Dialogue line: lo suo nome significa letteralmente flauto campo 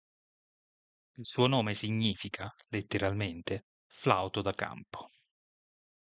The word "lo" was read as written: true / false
false